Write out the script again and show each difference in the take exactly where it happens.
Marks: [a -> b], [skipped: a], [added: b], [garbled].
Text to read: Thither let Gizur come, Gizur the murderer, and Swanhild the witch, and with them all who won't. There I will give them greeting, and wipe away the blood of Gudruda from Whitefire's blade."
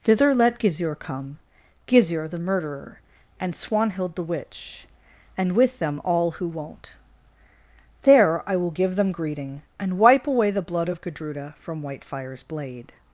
Thither let Gizur come, Gizur the murderer, and Swanhild the witch, and with them all who won't. There I will give them greeting, and wipe away the blood of Gudruda from Whitefire's blade."